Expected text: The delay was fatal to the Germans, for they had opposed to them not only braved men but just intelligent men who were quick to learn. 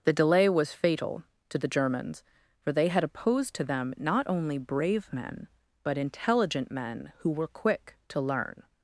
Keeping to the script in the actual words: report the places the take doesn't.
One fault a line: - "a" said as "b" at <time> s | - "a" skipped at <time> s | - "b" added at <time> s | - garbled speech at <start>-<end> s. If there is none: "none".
- "braved" said as "brave" at 4.6 s
- "just" skipped at 6.0 s